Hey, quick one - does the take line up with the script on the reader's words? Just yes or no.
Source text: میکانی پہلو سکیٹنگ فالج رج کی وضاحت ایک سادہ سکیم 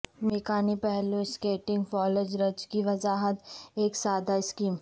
yes